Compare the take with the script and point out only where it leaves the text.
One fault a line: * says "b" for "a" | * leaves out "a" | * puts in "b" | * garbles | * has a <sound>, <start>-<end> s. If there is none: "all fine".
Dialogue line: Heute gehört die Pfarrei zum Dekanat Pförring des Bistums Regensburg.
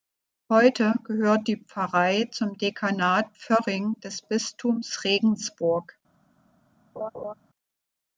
* has a laugh, 7.0-7.3 s